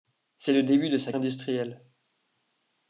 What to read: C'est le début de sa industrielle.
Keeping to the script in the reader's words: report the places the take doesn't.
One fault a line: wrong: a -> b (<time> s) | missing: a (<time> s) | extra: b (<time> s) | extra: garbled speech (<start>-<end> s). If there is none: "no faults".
no faults